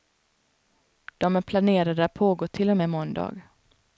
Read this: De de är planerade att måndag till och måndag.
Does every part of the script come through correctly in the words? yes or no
no